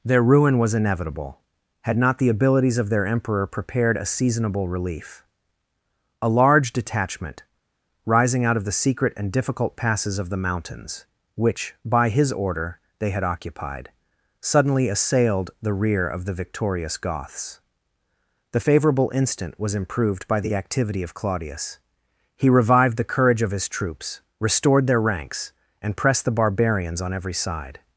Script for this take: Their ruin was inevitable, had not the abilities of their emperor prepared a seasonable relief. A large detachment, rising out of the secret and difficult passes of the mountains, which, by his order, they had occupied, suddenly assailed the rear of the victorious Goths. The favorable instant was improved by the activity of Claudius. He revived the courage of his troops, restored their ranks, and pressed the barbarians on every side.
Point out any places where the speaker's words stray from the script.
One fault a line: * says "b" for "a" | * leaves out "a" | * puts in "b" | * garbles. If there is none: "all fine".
all fine